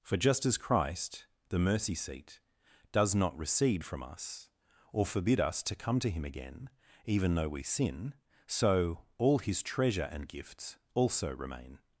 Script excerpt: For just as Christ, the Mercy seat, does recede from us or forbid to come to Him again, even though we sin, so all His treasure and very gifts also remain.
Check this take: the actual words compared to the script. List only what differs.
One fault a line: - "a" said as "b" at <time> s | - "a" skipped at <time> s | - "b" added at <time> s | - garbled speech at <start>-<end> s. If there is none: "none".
- "not" added at 3.1 s
- "us" added at 5.4 s
- "very" skipped at 10.3 s